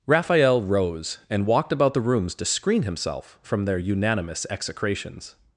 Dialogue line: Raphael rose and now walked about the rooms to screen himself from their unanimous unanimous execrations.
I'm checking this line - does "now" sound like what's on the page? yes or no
no